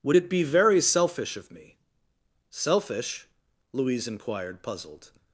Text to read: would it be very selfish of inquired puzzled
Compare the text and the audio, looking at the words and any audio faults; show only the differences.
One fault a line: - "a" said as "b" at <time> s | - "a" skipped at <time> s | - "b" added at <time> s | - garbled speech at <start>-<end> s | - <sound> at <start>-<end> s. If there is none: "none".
- "me selfish louise" added at 1.5 s